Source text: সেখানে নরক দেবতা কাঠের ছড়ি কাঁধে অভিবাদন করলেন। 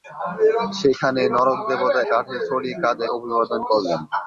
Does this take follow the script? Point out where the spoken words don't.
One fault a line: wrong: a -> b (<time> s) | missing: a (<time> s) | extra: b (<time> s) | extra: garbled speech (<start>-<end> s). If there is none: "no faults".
no faults